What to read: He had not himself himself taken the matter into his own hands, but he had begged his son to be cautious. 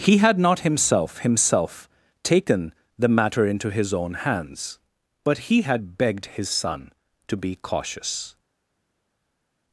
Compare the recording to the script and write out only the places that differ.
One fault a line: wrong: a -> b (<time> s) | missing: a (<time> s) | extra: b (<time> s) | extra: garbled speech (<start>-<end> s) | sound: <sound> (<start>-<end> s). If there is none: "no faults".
no faults